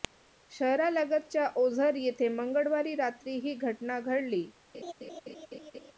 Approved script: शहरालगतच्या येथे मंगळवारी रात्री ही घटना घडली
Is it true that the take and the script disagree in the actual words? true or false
true